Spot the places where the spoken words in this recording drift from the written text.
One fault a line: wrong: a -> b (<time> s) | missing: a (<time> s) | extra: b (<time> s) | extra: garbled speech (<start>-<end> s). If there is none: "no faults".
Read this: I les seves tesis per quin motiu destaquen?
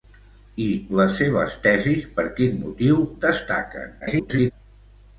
extra: garbled speech (4.0-4.5 s)